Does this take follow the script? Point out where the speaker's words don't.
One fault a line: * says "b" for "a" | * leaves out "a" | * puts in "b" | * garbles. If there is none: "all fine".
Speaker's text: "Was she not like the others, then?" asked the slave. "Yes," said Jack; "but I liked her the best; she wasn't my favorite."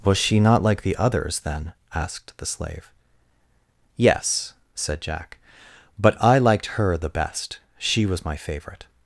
* says "was" for "wasn't"